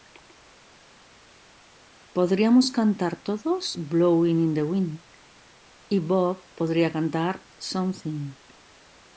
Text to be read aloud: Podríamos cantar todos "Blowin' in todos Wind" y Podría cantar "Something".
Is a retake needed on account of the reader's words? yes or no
yes